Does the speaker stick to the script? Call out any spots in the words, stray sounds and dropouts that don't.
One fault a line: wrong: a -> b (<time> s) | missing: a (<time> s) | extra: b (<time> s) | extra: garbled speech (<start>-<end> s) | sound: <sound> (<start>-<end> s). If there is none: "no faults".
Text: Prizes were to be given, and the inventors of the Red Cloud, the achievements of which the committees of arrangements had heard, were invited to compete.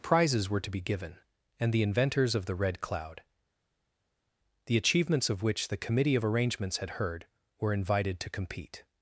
wrong: committees -> committee (5.8 s)